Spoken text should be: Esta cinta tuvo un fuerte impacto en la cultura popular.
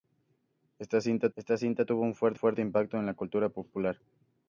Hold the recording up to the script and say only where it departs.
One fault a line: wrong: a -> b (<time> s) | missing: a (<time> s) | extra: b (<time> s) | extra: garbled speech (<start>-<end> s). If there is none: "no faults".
extra: esta cinta (1.4 s)
extra: fuerte (2.3 s)